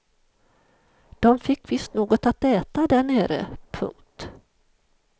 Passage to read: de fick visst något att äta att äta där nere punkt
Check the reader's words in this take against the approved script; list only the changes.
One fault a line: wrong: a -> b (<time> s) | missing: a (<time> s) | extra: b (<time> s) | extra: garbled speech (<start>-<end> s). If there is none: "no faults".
missing: att äta (2.9 s)